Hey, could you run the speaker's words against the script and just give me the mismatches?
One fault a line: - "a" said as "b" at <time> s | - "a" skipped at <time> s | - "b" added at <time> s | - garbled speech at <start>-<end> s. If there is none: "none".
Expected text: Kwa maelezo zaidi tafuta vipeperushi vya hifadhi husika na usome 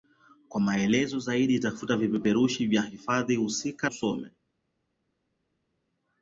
- "na" skipped at 3.9 s